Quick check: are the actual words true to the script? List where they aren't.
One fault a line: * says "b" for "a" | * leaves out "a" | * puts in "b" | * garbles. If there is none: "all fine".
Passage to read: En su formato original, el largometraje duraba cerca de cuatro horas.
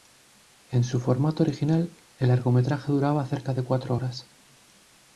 all fine